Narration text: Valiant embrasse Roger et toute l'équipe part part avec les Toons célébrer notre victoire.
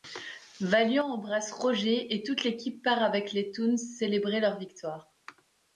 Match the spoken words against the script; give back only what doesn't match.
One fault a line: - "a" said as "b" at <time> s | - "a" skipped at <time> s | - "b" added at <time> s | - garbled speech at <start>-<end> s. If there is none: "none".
- "part" skipped at 3.0 s
- "notre" said as "leur" at 4.4 s